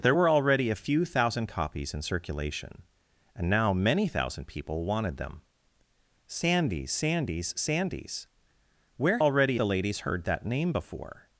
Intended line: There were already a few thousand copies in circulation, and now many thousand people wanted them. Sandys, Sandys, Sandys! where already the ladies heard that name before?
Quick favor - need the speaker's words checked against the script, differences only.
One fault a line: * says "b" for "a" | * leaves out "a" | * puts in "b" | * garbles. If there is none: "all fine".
all fine